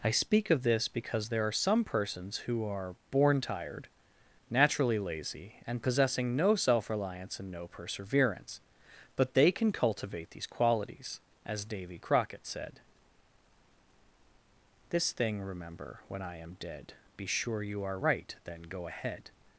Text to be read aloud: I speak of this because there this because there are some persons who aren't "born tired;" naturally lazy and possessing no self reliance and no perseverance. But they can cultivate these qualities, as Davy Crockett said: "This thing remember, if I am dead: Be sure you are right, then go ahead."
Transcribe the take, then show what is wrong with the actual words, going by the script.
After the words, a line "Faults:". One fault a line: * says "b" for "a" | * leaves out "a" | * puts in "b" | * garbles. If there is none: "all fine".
I speak of this because there are some persons who are "born tired;" naturally lazy and possessing no self reliance and no perseverance. But they can cultivate these qualities, as Davy Crockett said: "This thing remember, when I am dead: Be sure you are right, then go ahead."
Faults:
* leaves out "this because there"
* says "are" for "aren't"
* says "when" for "if"